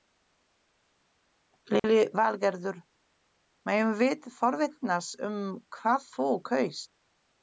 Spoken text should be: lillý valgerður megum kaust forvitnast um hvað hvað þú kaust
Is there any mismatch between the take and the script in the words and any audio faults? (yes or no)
yes